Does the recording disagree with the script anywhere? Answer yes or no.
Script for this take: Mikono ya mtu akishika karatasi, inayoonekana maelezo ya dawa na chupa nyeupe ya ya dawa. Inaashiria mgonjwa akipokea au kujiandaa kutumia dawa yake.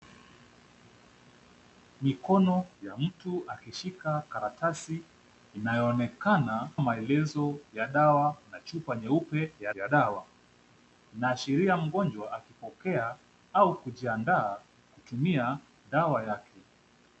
no